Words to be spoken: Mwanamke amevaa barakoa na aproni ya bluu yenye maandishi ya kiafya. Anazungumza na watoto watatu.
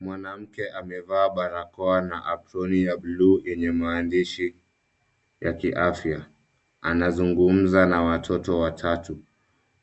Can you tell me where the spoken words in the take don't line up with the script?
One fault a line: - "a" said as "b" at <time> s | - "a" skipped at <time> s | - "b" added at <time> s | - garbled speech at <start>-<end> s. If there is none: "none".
none